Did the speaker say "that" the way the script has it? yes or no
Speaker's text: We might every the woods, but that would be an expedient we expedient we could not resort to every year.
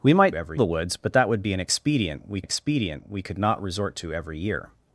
yes